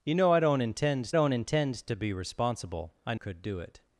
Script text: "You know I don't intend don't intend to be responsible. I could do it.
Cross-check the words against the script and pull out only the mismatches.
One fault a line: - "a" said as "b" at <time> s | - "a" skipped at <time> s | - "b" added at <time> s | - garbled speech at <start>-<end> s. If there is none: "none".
none